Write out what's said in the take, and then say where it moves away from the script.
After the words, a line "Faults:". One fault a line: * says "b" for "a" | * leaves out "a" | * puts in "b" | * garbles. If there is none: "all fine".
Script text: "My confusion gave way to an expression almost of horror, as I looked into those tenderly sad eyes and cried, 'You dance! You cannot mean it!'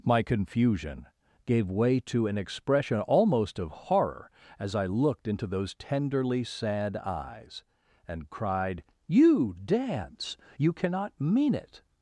"My confusion gave way to an expression almost of horror, as I looked into those tenderly sad eyes and cried, 'You dance! You cannot mean it!'
Faults:
all fine